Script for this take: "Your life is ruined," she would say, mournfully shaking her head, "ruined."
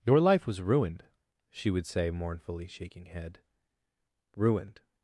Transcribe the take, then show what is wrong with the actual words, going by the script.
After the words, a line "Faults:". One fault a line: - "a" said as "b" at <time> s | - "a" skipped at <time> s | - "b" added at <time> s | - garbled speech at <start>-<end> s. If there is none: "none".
"Your life was ruined," she would say, mournfully shaking head, "ruined."
Faults:
- "is" said as "was" at 0.5 s
- "her" skipped at 3.1 s